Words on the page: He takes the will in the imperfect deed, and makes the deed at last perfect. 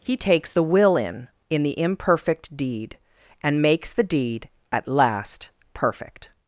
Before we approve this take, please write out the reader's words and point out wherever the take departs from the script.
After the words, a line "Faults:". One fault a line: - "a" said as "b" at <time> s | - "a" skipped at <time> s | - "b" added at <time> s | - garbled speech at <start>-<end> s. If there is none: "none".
He takes the will in in the imperfect deed, and makes the deed at last perfect.
Faults:
- "in" added at 1.5 s